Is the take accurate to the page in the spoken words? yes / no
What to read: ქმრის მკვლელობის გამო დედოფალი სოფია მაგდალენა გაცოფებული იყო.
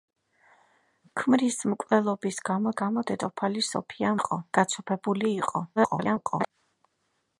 no